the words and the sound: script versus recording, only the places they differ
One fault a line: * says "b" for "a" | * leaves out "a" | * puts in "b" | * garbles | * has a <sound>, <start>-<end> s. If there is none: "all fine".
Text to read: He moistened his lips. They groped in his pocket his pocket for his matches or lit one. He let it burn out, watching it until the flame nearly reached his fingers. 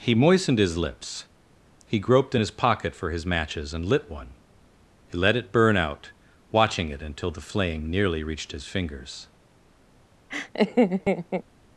* says "He" for "They"
* leaves out "his pocket"
* says "and" for "or"
* has a laugh, 10.3-11.4 s